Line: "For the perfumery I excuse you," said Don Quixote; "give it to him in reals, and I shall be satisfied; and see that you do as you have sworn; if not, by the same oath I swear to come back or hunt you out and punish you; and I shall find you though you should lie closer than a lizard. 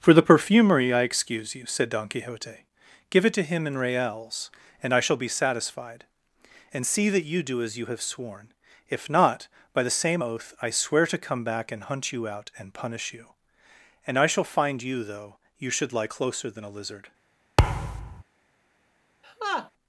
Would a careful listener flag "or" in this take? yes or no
yes